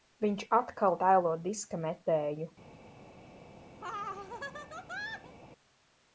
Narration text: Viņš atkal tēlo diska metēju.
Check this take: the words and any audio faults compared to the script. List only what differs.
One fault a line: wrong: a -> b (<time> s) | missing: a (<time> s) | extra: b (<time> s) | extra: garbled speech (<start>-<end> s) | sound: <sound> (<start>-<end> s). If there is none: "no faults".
sound: laugh (3.8-5.3 s)